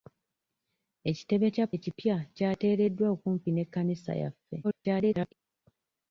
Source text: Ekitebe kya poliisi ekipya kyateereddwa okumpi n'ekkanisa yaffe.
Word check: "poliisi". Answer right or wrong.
wrong